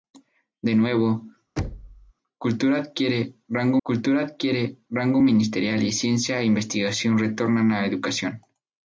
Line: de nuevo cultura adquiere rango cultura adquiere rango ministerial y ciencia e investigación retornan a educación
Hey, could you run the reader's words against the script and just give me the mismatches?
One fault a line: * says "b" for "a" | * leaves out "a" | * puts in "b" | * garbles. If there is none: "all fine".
all fine